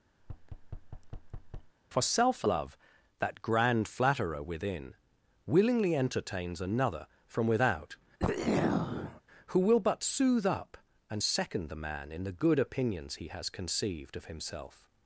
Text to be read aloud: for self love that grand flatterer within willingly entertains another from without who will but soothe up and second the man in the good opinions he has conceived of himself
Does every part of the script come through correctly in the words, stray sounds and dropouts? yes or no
no